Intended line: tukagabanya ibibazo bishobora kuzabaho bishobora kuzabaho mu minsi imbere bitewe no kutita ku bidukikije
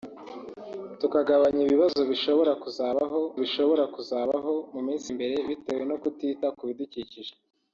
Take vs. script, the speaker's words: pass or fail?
pass